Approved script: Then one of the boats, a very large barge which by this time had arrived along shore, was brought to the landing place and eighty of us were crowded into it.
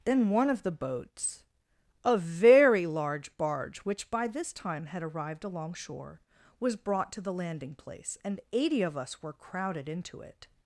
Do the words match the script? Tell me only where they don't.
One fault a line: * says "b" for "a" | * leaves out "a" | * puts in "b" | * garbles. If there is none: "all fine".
all fine